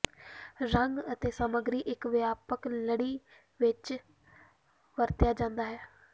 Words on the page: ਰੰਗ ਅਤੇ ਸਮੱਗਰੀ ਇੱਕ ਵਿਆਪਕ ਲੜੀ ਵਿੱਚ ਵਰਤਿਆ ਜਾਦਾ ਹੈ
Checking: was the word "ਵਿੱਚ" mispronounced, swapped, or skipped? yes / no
no